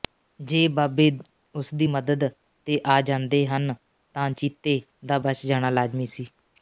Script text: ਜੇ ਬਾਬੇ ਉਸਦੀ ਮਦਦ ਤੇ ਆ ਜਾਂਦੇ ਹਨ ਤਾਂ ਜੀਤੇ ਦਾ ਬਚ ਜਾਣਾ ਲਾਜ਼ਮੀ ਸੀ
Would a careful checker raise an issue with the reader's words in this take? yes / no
no